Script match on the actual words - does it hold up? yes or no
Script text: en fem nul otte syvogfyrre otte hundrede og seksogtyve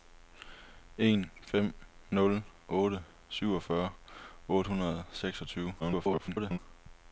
no